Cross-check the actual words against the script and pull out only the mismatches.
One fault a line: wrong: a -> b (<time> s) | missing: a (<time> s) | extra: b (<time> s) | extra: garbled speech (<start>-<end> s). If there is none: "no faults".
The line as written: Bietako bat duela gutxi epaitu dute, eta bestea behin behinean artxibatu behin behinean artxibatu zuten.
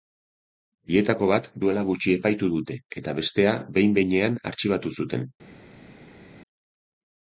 missing: behin behinean artxibatu (5.0 s)